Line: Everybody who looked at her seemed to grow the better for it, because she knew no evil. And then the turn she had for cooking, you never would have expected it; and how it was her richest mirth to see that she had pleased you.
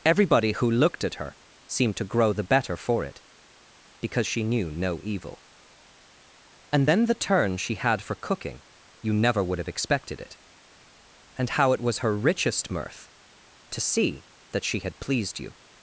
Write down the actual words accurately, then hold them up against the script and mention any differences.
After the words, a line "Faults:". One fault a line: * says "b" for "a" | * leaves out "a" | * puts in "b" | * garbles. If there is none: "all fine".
Everybody who looked at her seemed to grow the better for it, because she knew no evil. And then the turn she had for cooking, you never would have expected it; and how it was her richest mirth to see that she had pleased you.
Faults:
all fine